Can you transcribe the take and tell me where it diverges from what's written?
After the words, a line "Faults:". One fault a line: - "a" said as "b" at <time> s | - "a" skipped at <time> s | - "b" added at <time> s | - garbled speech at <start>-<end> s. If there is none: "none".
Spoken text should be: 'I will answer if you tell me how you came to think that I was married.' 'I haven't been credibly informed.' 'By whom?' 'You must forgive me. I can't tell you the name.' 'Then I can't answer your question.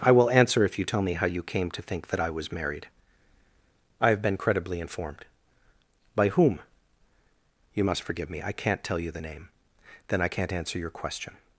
'I will answer if you tell me how you came to think that I was married.' 'I have been credibly informed.' 'By whom?' 'You must forgive me. I can't tell you the name.' 'Then I can't answer your question.
Faults:
- "haven't" said as "have" at 4.1 s